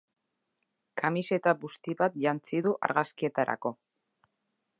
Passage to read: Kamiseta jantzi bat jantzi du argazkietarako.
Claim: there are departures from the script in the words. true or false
true